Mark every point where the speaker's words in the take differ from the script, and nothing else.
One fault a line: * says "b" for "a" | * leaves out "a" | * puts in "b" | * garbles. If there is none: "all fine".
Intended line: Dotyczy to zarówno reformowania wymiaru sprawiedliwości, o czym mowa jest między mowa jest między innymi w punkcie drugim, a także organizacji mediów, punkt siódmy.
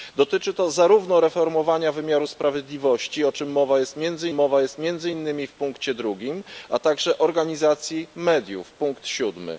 all fine